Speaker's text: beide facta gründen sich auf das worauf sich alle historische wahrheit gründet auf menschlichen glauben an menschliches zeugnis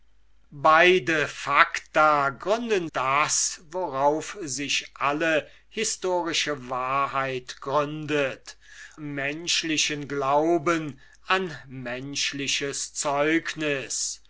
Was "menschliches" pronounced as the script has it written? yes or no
yes